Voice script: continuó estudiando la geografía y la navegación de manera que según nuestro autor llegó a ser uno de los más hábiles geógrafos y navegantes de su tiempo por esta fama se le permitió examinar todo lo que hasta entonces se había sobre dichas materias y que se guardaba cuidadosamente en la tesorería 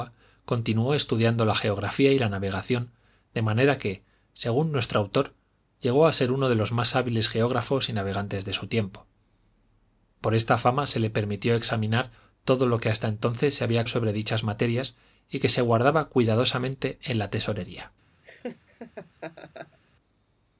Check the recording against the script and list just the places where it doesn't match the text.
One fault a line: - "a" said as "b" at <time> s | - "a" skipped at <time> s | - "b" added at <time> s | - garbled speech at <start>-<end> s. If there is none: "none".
none